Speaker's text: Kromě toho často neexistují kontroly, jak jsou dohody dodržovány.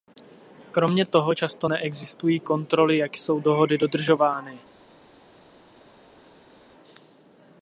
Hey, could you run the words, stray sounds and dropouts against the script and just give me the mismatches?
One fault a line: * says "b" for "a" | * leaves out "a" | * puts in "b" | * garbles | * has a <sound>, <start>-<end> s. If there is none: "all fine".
all fine